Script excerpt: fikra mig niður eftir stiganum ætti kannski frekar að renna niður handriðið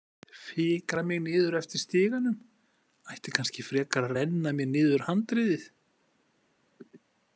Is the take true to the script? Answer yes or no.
no